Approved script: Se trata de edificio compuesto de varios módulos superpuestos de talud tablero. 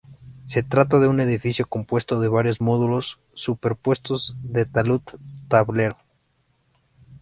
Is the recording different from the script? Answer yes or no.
yes